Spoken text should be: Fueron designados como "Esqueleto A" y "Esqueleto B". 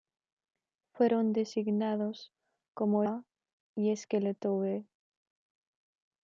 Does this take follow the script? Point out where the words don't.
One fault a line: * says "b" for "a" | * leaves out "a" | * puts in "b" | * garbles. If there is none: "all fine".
* leaves out "Esqueleto"